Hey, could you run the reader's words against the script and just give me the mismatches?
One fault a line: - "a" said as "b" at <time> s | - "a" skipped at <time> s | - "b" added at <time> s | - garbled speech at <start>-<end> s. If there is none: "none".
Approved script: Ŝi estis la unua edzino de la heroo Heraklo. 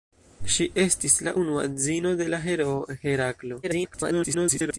- garbled speech at 3.6-4.8 s